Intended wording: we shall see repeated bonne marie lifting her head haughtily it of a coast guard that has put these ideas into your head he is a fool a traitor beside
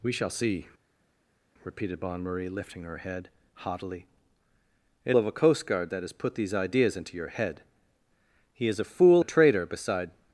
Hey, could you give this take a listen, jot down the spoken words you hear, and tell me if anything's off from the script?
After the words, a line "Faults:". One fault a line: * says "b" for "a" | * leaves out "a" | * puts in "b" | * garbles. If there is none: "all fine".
we shall see repeated bonne marie lifting her head haughtily it of a coast guard that has put these ideas into your head he is a fool a traitor beside
Faults:
all fine